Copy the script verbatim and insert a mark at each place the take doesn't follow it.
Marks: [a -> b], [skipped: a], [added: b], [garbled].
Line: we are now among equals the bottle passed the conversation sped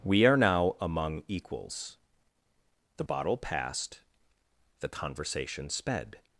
we are now among equals the bottle passed the conversation sped